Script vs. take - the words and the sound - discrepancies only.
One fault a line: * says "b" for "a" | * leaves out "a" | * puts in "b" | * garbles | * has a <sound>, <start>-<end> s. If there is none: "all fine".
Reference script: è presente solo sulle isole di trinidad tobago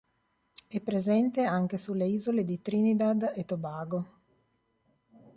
* says "anche" for "solo"
* puts in "e"